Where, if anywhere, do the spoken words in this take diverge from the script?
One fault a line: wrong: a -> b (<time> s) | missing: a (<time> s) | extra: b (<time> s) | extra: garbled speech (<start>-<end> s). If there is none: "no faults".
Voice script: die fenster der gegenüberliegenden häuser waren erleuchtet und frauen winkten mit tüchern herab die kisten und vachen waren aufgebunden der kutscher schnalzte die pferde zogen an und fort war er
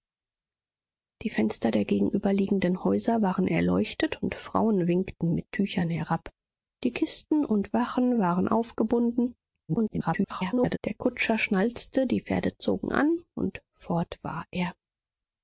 extra: garbled speech (9.7-10.8 s)